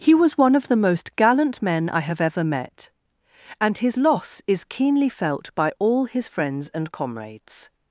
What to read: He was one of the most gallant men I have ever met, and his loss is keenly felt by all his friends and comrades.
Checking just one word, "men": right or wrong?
right